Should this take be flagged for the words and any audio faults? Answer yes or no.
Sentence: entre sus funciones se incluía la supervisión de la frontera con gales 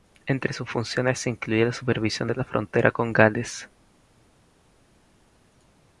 no